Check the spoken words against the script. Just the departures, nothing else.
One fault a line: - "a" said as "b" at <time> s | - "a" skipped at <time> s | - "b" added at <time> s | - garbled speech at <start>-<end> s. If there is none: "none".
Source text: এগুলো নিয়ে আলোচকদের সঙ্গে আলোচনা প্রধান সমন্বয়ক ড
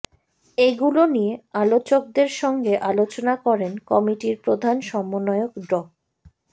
- "করেন কমিটির" added at 3.5 s